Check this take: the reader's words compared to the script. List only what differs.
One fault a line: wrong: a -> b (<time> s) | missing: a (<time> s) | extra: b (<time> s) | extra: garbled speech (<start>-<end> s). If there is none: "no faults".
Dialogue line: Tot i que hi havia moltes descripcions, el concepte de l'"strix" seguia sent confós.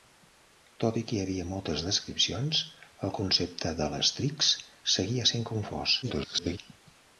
extra: garbled speech (6.0-6.6 s)